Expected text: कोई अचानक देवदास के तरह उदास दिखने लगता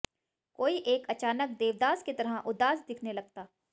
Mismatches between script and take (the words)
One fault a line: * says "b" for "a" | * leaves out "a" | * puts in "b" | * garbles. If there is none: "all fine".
* puts in "एक"
* says "की" for "के"